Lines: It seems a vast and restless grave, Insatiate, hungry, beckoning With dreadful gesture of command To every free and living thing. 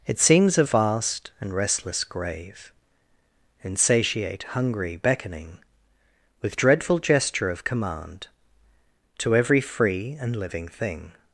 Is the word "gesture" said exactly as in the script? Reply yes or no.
yes